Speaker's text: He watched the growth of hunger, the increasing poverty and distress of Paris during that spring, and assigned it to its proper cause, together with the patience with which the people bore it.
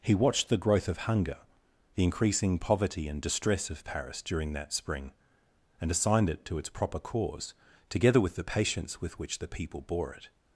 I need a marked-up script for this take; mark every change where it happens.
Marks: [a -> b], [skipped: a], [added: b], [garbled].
He watched the growth of hunger, the increasing poverty and distress of Paris during that spring, and assigned it to its proper cause, together with the patience with which the people bore it.